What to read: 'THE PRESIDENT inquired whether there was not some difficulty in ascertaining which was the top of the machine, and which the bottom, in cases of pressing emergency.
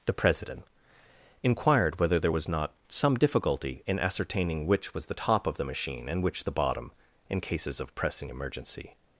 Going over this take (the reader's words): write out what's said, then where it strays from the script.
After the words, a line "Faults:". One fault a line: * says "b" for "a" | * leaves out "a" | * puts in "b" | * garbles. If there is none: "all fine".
'THE PRESIDENT inquired whether there was not some difficulty in ascertaining which was the top of the machine, and which the bottom, in cases of pressing emergency.
Faults:
all fine